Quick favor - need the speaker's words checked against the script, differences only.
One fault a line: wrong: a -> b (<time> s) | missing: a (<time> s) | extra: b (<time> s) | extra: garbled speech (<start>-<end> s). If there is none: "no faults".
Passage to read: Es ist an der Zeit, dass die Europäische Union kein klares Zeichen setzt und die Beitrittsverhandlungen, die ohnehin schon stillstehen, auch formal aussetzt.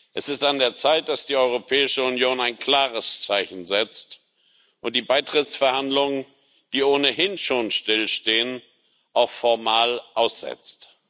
wrong: kein -> ein (2.4 s)